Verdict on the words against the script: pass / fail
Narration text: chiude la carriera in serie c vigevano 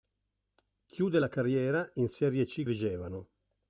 pass